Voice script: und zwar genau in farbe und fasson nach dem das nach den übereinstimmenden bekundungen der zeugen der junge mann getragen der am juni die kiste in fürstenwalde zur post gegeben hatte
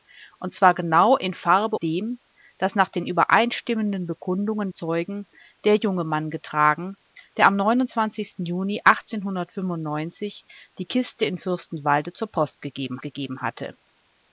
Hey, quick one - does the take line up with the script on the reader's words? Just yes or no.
no